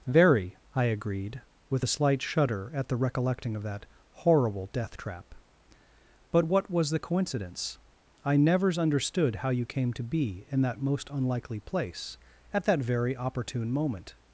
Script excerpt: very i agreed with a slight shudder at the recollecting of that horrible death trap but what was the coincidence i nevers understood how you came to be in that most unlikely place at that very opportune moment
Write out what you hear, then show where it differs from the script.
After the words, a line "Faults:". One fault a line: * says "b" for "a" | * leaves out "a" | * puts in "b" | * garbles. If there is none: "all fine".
very i agreed with a slight shudder at the recollecting of that horrible death trap but what was the coincidence i nevers understood how you came to be in that most unlikely place at that very opportune moment
Faults:
all fine